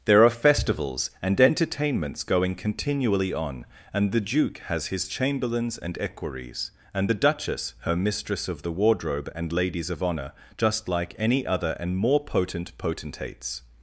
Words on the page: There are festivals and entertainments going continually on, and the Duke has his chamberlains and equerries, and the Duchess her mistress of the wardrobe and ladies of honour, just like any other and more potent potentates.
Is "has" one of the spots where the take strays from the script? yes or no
no